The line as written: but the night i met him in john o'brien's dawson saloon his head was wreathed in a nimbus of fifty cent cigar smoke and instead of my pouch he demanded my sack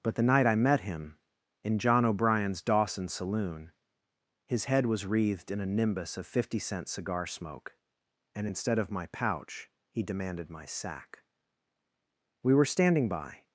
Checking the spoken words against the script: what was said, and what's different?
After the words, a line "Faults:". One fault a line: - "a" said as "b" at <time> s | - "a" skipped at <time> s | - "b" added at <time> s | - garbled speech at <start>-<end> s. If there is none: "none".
but the night i met him in john o'brien's dawson saloon his head was wreathed in a nimbus of fifty cent cigar smoke and instead of my pouch he demanded my sack we were standing by
Faults:
- "we were standing by" added at 12.4 s